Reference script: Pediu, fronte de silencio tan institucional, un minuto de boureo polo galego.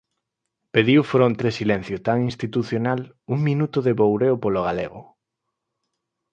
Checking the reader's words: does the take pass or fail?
pass